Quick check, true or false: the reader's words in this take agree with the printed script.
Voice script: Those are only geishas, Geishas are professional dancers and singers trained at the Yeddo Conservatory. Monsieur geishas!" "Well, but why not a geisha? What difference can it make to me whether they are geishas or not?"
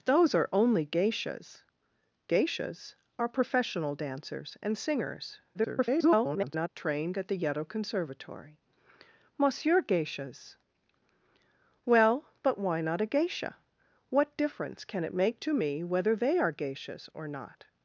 false